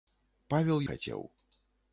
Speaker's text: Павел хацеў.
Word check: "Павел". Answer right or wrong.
right